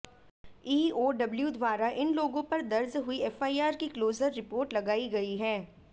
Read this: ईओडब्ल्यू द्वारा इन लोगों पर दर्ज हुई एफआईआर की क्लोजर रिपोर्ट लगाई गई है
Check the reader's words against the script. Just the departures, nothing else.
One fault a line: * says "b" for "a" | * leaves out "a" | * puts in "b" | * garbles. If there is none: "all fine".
all fine